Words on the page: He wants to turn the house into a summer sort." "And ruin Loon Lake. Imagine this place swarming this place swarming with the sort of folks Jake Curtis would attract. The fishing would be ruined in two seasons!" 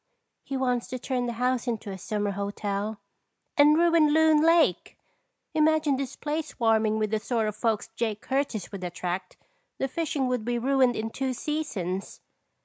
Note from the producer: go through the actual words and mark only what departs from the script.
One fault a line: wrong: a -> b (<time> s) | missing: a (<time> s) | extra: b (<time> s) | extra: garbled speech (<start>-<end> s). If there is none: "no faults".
wrong: sort -> hotel (2.3 s)
missing: this place swarming (7.0 s)